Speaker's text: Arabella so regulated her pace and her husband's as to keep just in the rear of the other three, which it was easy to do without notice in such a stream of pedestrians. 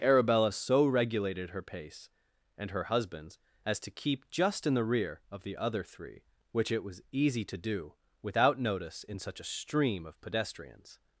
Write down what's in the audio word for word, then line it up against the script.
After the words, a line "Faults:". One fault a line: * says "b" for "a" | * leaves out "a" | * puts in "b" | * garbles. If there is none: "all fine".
Arabella so regulated her pace and her husband's as to keep just in the rear of the other three, which it was easy to do without notice in such a stream of pedestrians.
Faults:
all fine